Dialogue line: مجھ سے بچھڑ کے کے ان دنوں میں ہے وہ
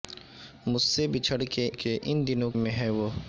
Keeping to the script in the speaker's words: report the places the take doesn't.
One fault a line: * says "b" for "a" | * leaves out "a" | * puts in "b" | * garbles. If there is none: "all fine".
all fine